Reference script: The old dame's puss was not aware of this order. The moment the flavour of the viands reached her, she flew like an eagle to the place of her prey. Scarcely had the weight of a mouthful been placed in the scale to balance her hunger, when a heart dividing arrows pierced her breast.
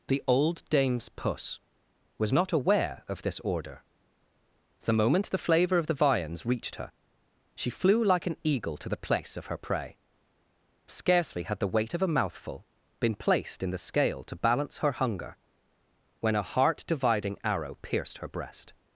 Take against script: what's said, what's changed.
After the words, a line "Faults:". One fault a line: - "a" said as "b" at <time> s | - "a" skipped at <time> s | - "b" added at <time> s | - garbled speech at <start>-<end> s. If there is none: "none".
The old dame's puss was not aware of this order. The moment the flavour of the viands reached her, she flew like an eagle to the place of her prey. Scarcely had the weight of a mouthful been placed in the scale to balance her hunger, when a heart dividing arrow pierced her breast.
Faults:
- "arrows" said as "arrow" at 17.4 s